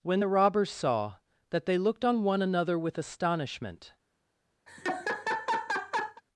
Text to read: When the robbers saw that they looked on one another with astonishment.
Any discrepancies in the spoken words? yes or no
no